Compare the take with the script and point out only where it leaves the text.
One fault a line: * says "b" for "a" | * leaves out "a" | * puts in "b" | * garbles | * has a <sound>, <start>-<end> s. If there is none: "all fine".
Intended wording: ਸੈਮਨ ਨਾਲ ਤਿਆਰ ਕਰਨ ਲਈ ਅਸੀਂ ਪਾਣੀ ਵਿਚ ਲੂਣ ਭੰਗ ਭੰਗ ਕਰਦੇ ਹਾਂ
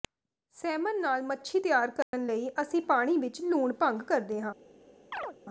* puts in "ਮੱਛੀ"
* has a dropout, 2.0-2.1 s
* leaves out "ਭੰਗ"
* has a chirp, 5.1-5.4 s